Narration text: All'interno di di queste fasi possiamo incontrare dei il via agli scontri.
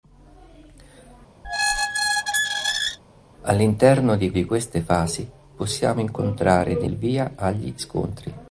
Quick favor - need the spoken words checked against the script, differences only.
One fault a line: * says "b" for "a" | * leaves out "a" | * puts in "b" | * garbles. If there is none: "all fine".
all fine